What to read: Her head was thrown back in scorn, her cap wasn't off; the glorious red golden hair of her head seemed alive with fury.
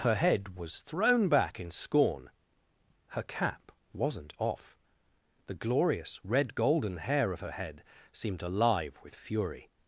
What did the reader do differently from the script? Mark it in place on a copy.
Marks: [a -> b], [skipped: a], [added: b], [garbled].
Her head was thrown back in scorn, her cap wasn't off; the glorious red golden hair of her head seemed alive with fury.